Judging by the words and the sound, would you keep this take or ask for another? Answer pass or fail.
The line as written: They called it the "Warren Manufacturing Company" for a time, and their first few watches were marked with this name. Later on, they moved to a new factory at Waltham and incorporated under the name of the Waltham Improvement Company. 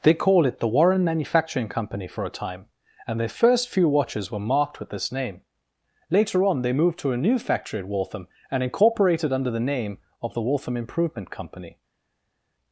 pass